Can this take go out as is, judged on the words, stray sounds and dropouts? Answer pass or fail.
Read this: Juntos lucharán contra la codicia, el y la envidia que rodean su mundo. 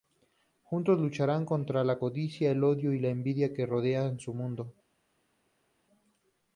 fail